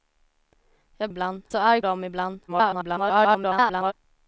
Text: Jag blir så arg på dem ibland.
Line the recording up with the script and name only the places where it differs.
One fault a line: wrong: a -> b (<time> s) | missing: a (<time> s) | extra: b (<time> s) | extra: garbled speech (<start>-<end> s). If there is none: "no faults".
wrong: blir -> ibland (1.1 s)
missing: på (1.8 s)
extra: garbled speech (2.5-3.9 s)